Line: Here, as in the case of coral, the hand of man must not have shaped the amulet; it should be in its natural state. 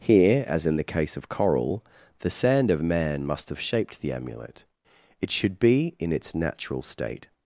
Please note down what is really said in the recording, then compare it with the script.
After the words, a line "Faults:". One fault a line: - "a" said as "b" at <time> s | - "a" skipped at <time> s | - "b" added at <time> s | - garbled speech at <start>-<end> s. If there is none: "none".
Here, as in the case of coral, the sand of man must have shaped the amulet; it should be in its natural state.
Faults:
- "hand" said as "sand" at 2.3 s
- "not" skipped at 3.5 s